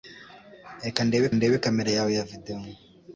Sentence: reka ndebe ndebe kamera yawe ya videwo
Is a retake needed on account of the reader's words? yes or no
no